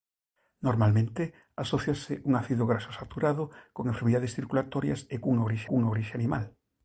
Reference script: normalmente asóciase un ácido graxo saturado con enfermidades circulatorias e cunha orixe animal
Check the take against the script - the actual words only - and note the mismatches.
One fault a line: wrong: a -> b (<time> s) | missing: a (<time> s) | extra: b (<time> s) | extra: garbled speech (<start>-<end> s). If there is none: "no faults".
extra: cunha orixe (5.7 s)